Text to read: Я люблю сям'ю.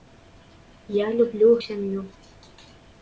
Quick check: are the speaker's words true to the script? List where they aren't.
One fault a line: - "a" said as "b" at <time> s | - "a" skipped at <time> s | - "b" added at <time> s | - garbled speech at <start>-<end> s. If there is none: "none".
none